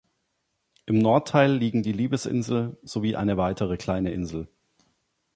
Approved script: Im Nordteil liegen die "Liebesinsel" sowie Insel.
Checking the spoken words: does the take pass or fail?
fail